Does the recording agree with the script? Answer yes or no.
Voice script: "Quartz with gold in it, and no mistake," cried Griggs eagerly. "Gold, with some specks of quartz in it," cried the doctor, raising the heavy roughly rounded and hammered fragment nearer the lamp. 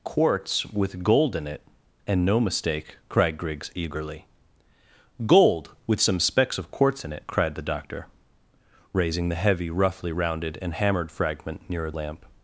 no